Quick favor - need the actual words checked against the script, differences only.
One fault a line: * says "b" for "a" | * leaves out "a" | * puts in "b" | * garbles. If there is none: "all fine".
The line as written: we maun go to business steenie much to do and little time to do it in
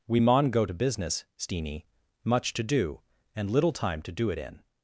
all fine